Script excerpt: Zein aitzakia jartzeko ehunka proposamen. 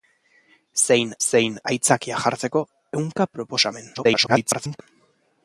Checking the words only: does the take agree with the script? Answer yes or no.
no